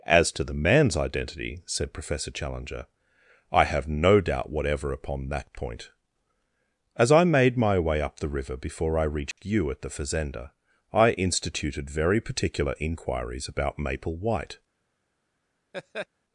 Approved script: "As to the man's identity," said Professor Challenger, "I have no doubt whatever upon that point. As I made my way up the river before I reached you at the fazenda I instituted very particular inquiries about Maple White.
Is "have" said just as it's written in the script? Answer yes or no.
yes